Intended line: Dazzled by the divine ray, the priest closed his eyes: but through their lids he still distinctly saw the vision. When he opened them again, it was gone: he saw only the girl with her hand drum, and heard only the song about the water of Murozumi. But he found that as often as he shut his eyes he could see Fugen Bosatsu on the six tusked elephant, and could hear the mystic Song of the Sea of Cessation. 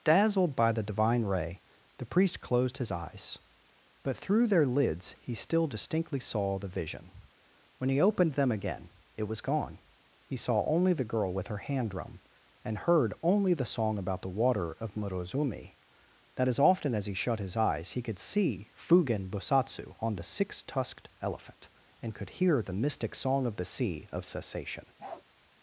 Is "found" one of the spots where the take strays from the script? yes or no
yes